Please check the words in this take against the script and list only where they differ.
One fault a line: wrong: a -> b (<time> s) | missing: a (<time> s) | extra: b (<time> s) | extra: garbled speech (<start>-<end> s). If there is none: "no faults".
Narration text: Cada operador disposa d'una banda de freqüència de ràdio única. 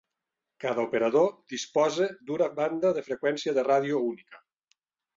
no faults